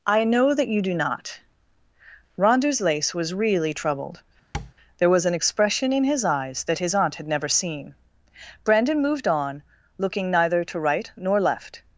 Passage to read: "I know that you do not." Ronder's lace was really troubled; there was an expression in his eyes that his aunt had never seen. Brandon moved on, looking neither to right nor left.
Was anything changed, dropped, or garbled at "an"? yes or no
no